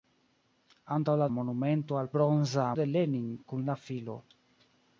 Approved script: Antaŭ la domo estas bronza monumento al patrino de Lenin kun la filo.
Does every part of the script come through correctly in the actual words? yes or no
no